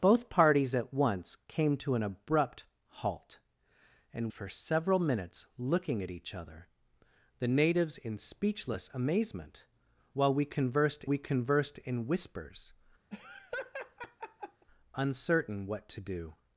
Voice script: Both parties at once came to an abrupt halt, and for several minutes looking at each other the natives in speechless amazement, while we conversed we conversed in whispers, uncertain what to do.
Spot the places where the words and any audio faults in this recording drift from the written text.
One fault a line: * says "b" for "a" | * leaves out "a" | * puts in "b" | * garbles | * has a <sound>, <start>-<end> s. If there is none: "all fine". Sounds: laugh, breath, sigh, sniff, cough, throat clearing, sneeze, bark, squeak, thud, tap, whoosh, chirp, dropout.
* has a laugh, 13.1-14.7 s